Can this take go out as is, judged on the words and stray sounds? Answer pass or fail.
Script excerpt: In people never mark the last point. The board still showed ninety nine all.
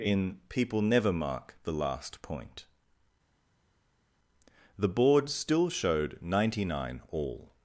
pass